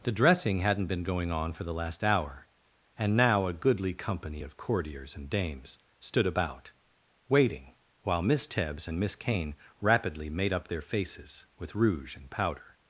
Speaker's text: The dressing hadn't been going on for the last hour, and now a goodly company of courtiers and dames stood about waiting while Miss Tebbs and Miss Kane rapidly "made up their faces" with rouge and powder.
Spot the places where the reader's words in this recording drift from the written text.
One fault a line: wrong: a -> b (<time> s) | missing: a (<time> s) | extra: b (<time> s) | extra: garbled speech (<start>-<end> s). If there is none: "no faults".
no faults